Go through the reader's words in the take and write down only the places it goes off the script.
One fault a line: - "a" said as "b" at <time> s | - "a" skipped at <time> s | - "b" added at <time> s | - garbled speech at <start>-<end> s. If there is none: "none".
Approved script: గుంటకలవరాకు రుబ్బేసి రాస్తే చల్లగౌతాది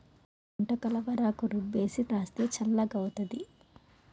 none